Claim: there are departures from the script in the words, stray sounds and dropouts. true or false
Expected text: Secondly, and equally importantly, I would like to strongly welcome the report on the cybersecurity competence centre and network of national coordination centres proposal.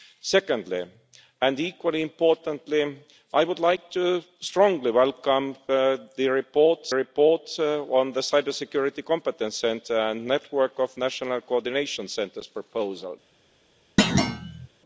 true